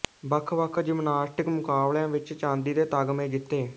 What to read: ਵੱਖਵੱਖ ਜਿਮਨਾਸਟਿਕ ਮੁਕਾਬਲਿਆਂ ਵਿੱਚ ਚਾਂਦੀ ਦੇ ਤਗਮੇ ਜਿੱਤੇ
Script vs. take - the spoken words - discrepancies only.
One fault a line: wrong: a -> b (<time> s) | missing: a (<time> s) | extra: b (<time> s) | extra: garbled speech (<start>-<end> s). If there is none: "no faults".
no faults